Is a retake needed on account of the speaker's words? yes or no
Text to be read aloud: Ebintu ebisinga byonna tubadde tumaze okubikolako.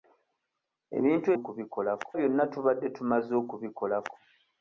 yes